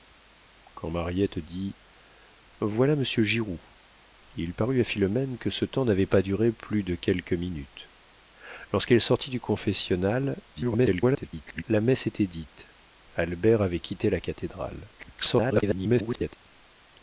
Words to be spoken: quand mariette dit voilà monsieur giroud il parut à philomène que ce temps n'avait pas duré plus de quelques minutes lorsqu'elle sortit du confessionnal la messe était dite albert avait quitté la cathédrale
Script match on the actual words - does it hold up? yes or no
no